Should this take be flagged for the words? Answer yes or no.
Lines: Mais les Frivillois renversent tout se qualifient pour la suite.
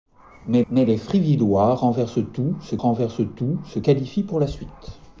yes